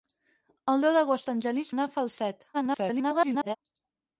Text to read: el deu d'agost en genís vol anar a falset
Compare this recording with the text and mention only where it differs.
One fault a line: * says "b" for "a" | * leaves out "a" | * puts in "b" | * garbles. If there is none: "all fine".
* leaves out "vol"
* garbles